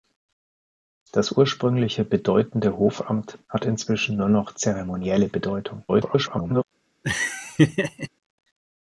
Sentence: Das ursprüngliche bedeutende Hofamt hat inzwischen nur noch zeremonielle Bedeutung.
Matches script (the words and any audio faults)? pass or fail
fail